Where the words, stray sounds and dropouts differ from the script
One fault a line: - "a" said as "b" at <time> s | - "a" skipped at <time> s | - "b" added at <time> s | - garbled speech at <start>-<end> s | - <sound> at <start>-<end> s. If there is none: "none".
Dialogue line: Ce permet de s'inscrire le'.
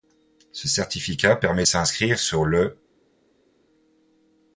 - "certificat" added at 0.7 s
- "sur" added at 2.2 s